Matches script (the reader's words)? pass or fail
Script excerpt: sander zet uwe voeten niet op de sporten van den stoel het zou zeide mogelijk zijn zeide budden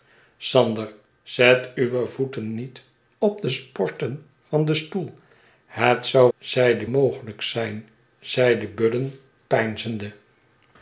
pass